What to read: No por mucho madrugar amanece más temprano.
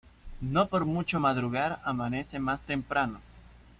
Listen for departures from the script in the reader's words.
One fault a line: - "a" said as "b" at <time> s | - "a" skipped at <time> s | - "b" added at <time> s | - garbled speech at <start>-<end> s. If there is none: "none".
none